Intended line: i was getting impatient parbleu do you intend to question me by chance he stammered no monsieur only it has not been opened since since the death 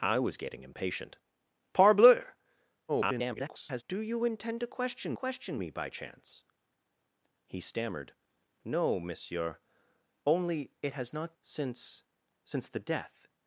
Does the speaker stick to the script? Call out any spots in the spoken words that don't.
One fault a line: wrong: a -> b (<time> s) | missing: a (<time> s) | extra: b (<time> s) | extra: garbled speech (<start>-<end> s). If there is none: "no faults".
extra: garbled speech (2.9-3.8 s)
extra: question (5.1 s)
missing: been opened (11.3 s)